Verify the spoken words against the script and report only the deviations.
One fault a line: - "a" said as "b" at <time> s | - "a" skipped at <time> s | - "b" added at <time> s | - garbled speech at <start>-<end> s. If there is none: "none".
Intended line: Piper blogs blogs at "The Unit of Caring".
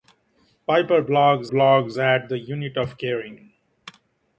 none